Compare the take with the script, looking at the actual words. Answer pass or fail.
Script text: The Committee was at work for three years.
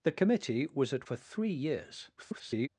fail